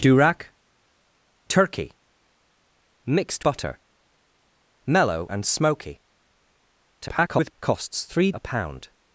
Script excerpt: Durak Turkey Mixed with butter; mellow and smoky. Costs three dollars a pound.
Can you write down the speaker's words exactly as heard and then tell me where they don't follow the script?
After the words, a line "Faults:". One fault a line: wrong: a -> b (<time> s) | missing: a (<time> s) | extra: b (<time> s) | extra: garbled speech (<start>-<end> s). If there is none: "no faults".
Durak Turkey Mixed butter; mellow and smoky. [garbled] Costs three a pound.
Faults:
missing: with (3.5 s)
extra: garbled speech (7.0-7.5 s)
missing: dollars (8.3 s)